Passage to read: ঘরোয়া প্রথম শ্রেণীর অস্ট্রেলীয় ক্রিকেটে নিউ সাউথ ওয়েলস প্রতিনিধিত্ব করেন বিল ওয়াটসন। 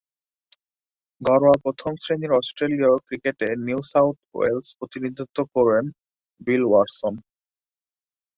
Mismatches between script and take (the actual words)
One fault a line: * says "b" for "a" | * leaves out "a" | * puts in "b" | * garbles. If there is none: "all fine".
all fine